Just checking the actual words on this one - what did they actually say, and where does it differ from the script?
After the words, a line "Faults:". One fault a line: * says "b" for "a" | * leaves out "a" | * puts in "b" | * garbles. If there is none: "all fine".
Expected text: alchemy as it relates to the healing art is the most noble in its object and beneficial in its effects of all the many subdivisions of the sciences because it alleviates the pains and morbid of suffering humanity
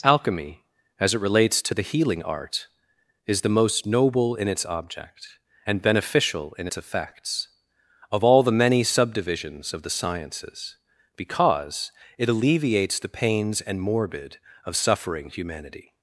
alchemy as it relates to the healing art is the most noble in its object and beneficial in its effects of all the many subdivisions of the sciences because it alleviates the pains and morbid of suffering humanity
Faults:
all fine